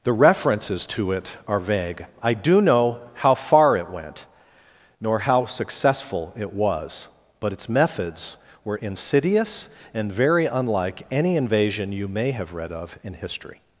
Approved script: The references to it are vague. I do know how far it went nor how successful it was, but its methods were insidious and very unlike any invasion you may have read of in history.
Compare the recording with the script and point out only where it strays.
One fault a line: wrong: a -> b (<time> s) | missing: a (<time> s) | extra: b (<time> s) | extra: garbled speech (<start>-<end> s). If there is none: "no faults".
no faults